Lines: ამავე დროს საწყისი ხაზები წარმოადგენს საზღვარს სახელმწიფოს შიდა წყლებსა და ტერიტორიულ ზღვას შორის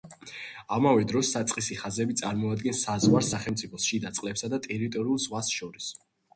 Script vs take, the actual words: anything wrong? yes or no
no